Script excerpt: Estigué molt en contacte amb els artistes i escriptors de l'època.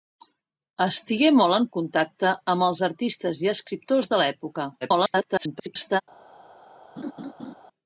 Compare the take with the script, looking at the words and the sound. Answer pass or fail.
fail